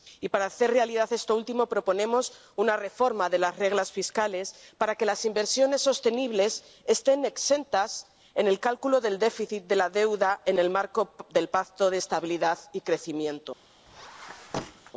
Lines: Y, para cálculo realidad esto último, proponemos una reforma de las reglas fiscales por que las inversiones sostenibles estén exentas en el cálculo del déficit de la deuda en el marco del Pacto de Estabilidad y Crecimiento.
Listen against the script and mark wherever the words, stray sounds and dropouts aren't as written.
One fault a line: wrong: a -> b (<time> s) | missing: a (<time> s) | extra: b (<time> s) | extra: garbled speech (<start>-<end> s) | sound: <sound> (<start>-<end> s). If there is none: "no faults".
wrong: cálculo -> hacer (0.5 s)
wrong: por -> para (4.8 s)
sound: squeak (13.9-14.9 s)